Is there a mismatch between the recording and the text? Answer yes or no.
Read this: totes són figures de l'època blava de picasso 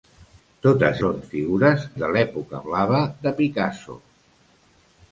no